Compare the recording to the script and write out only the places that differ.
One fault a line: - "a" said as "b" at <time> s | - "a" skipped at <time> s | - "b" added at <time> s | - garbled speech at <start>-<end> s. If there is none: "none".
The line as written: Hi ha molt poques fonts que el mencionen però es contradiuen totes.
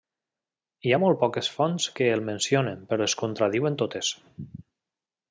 none